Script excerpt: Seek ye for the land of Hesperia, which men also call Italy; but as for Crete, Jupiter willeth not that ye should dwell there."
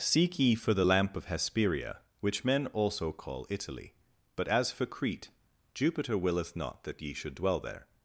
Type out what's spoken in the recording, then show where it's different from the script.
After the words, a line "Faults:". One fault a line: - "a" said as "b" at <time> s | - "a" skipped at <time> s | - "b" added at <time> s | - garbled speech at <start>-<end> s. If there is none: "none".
Seek ye for the lamp of Hesperia, which men also call Italy; but as for Crete, Jupiter willeth not that ye should dwell there."
Faults:
- "land" said as "lamp" at 0.8 s